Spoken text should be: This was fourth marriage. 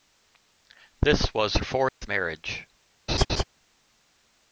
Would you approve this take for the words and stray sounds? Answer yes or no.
no